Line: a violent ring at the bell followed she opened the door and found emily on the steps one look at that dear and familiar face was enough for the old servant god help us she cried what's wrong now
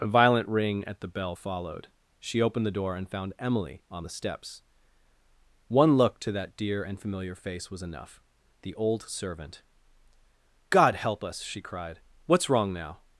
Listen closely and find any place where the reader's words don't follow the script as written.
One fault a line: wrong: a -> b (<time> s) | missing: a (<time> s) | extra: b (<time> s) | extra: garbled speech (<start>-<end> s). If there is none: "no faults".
wrong: at -> to (6.2 s)
missing: for (8.2 s)